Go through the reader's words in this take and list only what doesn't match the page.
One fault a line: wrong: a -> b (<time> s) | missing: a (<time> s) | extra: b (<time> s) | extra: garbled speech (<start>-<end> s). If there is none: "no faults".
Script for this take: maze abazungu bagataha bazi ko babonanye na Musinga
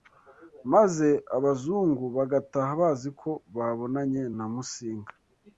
no faults